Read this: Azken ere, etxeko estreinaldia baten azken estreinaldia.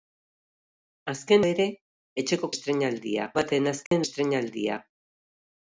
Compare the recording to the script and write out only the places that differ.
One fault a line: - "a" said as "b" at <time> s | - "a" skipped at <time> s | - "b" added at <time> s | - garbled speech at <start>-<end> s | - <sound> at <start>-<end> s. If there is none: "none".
- dropout at 3.9-3.9 s